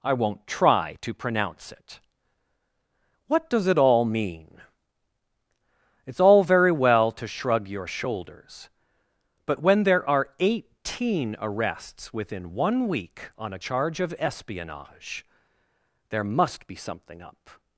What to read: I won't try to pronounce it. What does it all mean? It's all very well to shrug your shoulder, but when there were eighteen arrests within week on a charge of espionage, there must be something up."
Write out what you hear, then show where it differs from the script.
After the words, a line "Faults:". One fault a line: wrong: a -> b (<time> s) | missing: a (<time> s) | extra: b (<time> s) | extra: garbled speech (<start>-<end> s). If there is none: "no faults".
I won't try to pronounce it. What does it all mean? It's all very well to shrug your shoulders, but when there are eighteen arrests within one week on a charge of espionage, there must be something up."
Faults:
wrong: shoulder -> shoulders (7.8 s)
wrong: were -> are (10.1 s)
extra: one (12.6 s)